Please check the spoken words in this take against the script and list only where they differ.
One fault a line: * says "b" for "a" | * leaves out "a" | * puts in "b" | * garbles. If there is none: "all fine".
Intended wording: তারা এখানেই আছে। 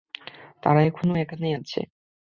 * puts in "এখনো"